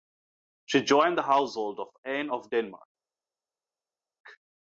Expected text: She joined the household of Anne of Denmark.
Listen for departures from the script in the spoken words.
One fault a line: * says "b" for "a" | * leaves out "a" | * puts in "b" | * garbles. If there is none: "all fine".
all fine